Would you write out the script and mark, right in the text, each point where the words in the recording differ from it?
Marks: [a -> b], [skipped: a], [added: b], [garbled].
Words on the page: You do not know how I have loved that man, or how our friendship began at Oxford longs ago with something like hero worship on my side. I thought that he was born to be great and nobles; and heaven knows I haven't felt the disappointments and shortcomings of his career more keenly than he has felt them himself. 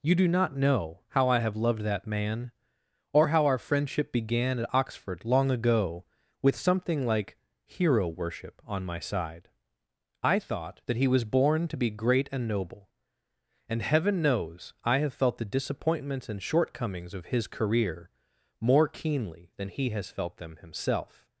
You do not know how I have loved that man, or how our friendship began at Oxford [longs -> long] ago with something like hero worship on my side. I thought that he was born to be great and [nobles; -> noble] and heaven knows I [haven't -> have] felt the disappointments and shortcomings of his career more keenly than he has felt them himself.